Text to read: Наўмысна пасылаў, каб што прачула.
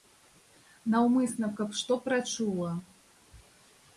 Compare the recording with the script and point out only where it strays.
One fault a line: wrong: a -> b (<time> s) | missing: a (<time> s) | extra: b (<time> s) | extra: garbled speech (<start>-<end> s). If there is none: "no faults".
missing: пасылаў (1.5 s)